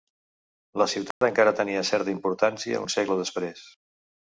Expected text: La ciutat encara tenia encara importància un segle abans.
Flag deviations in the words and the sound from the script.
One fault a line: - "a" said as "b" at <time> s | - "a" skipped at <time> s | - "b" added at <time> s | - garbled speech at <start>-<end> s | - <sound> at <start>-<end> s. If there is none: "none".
- dropout at 1.1-1.2 s
- "encara" said as "certa" at 1.9 s
- "abans" said as "després" at 3.3 s